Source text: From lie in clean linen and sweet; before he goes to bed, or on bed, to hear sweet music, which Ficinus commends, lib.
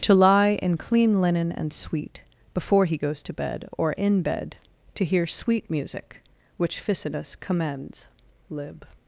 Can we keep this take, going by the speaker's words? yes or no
no